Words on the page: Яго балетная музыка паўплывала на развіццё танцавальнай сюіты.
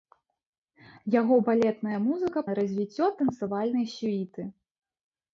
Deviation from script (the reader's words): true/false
true